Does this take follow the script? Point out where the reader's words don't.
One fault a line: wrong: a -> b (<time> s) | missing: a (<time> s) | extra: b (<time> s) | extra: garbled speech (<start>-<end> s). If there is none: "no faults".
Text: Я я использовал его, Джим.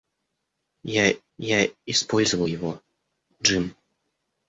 no faults